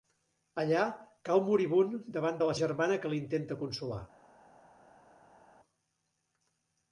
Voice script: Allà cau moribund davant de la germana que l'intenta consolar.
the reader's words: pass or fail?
pass